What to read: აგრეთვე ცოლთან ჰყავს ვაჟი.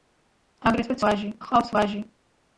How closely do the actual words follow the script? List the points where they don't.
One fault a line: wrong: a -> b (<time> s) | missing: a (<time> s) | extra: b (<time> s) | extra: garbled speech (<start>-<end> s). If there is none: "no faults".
wrong: ცოლთან -> ვაჟი (1.1 s)